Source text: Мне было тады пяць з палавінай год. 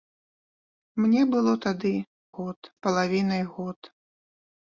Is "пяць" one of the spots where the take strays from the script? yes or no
yes